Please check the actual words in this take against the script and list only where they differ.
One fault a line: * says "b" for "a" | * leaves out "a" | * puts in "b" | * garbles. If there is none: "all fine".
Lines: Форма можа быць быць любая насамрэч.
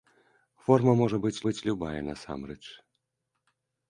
all fine